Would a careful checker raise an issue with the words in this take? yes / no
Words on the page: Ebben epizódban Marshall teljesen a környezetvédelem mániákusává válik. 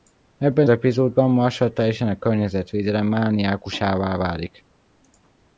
no